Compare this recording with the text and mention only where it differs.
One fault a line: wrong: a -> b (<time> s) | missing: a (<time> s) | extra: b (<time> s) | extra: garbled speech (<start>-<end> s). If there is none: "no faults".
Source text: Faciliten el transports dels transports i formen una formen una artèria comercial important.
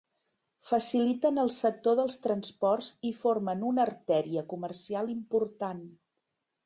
wrong: transports -> sector (1.6 s)
missing: formen una (3.9 s)